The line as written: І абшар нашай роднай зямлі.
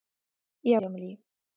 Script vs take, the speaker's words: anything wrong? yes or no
yes